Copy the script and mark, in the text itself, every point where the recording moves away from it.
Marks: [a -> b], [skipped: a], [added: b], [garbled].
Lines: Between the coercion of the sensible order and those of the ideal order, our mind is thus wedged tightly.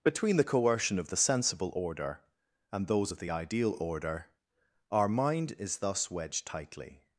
Between the coercion of the sensible order and those of the ideal order, our mind is thus wedged tightly.